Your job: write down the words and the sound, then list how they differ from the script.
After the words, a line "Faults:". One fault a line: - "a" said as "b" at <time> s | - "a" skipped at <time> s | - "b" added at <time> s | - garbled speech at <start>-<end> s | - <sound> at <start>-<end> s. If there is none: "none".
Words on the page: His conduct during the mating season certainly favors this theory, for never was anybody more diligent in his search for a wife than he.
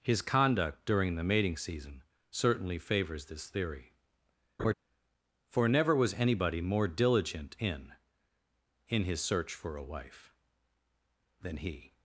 His conduct during the mating season certainly favors this theory, for never was anybody more diligent in in his search for a wife than he.
Faults:
- laugh at 4.6-4.7 s
- "in" added at 8.9 s